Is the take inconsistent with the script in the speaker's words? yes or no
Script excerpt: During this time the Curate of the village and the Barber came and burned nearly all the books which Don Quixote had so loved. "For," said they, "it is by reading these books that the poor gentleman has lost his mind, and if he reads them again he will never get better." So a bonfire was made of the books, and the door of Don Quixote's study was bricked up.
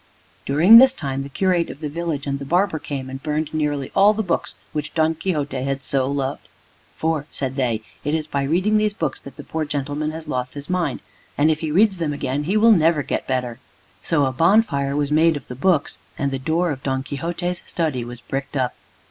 no